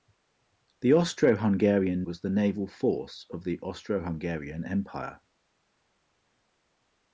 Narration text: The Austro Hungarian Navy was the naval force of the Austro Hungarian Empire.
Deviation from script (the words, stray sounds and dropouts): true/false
true